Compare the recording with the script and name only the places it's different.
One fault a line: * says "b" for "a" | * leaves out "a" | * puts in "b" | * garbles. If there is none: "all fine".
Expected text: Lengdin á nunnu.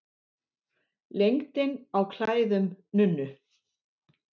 * puts in "klæðum"